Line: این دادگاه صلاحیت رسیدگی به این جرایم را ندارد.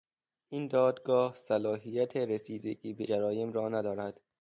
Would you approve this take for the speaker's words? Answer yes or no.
no